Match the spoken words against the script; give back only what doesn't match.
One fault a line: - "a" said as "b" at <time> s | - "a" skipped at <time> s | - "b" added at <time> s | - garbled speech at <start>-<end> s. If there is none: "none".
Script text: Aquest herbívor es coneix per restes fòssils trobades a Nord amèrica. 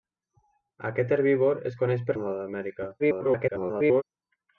- "restes fòssils trobades" skipped at 2.1 s
- garbled speech at 3.0-4.0 s